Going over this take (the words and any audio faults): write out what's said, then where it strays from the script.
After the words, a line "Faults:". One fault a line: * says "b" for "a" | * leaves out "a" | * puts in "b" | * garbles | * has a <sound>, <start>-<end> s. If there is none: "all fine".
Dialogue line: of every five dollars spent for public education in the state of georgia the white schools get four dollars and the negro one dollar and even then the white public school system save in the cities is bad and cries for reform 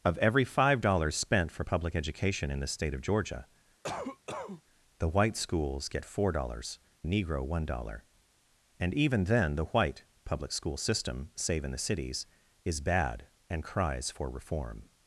of every five dollars spent for public education in the state of georgia the white schools get four dollars the negro one dollar and even then the white public school system save in the cities is bad and cries for reform
Faults:
* has a cough, 3.8-4.6 s
* leaves out "and"